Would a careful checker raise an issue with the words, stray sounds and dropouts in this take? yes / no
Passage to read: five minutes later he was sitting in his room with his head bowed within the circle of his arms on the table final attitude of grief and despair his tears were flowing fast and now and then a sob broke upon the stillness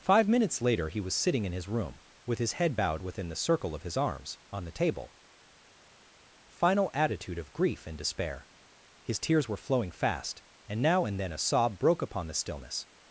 no